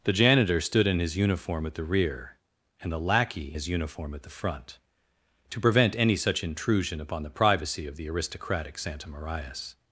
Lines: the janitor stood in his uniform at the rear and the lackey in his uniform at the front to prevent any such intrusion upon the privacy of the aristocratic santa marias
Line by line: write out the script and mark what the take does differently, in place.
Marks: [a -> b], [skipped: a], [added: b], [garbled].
the janitor stood in his uniform at the rear and the lackey [skipped: in] his uniform at the front to prevent any such intrusion upon the privacy of the aristocratic santa marias